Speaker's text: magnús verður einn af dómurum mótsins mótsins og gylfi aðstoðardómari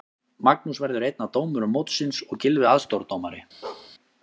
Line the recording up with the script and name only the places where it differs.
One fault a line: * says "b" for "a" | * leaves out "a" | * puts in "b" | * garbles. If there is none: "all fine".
* leaves out "mótsins"